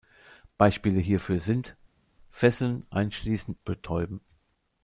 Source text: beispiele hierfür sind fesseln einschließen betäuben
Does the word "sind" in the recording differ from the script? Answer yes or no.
no